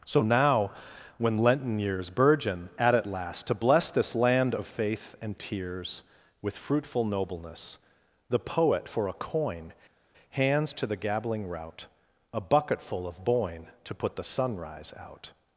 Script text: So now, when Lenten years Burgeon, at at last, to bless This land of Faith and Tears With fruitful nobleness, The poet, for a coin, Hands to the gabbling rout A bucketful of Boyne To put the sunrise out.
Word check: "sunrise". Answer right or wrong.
right